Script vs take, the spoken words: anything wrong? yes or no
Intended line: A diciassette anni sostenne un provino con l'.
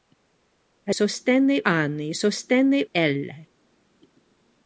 yes